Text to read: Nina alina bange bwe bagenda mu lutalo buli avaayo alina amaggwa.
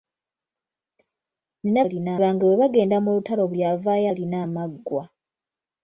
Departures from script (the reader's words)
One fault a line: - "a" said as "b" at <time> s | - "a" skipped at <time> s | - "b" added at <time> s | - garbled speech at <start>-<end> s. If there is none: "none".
none